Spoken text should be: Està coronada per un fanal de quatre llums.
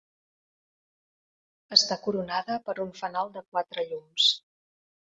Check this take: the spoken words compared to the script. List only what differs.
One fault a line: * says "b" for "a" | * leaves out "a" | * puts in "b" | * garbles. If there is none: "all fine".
all fine